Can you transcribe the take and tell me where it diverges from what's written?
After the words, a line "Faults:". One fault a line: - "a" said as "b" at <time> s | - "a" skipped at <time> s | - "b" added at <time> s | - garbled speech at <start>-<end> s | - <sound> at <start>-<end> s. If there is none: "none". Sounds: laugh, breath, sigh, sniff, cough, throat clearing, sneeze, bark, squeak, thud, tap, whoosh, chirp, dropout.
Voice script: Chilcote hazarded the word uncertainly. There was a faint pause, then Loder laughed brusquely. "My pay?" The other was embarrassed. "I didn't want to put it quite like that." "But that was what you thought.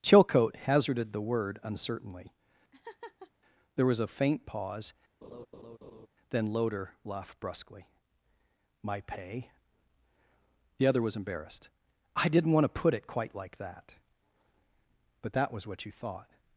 Chilcote hazarded the word uncertainly. There was a faint pause, then Loder laughed brusquely. "My pay?" The other was embarrassed. "I didn't want to put it quite like that." "But that was what you thought.
Faults:
- laugh at 2.7-3.3 s
- laugh at 5.2-6.1 s